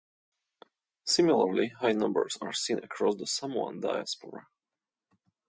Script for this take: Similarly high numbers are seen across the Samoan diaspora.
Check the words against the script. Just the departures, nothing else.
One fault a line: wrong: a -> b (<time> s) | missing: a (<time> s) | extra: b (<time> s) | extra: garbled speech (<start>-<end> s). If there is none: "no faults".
no faults